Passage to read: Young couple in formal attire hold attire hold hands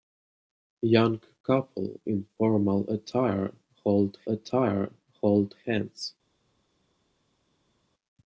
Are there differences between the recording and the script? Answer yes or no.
no